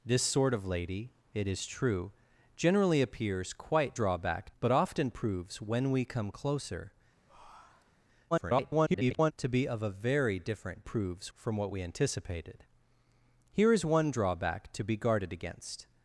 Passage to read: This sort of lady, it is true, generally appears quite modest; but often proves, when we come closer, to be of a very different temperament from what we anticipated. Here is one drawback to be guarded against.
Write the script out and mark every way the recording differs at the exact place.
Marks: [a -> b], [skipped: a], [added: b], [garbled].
This sort of lady, it is true, generally appears quite [modest; -> drawback] but often proves, when we come closer, [garbled] to be of a very different [temperament -> proves] from what we anticipated. Here is one drawback to be guarded against.